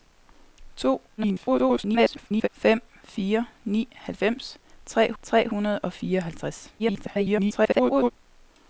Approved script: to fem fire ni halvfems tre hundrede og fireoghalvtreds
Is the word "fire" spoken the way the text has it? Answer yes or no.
yes